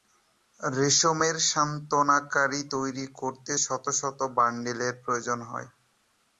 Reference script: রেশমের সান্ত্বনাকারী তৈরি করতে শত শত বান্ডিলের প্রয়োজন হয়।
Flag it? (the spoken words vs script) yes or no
no